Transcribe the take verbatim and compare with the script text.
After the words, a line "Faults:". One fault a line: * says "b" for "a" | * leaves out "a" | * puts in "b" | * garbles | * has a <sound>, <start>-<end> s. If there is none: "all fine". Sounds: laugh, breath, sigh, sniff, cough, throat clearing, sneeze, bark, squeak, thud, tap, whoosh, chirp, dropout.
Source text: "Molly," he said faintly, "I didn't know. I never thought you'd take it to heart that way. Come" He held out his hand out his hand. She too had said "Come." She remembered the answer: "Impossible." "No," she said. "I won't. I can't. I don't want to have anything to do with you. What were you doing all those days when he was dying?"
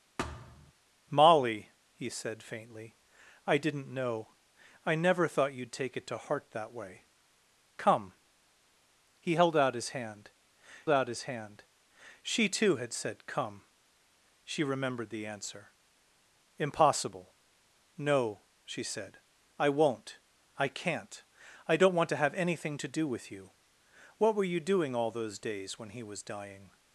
"Molly," he said faintly, "I didn't know. I never thought you'd take it to heart that way. Come" He held out his hand out his hand. She too had said "Come." She remembered the answer: "Impossible." "No," she said. "I won't. I can't. I don't want to have anything to do with you. What were you doing all those days when he was dying?"
Faults:
* has a thud, 0.2-0.7 s